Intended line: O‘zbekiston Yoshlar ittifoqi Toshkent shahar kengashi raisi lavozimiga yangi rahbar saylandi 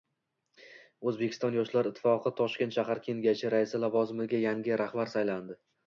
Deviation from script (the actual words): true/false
false